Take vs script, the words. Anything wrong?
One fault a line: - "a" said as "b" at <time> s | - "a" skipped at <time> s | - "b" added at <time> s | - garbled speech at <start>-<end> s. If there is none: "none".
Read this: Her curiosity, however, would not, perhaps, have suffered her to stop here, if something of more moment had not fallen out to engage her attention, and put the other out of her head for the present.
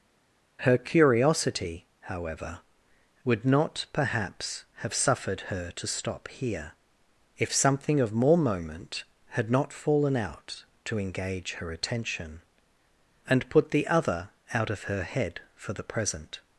none